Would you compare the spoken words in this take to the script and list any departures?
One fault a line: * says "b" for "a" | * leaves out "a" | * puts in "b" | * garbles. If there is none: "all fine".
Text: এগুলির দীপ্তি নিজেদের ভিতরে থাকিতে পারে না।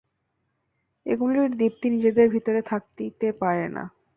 all fine